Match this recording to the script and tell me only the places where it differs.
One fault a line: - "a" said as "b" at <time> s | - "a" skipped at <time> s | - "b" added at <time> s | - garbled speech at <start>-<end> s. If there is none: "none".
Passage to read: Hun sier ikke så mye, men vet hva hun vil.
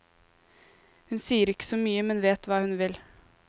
none